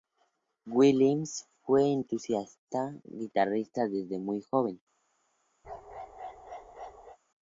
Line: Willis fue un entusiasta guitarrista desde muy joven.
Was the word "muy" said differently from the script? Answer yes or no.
no